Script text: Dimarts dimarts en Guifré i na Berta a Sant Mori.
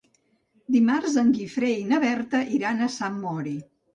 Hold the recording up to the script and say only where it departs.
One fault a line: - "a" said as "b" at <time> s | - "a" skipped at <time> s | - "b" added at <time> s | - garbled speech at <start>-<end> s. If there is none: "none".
- "dimarts" skipped at 1.2 s
- "iran" added at 2.6 s